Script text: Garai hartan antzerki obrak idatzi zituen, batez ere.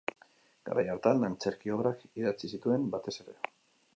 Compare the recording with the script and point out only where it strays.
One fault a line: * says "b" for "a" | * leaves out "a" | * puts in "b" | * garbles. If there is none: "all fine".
all fine